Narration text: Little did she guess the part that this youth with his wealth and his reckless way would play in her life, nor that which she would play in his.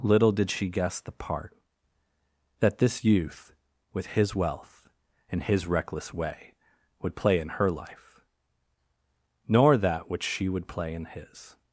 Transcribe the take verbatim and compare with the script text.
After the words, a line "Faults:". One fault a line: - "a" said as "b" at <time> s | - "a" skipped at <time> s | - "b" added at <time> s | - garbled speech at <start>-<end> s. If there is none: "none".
Little did she guess the part that this youth with his wealth and his reckless way would play in her life, nor that which she would play in his.
Faults:
none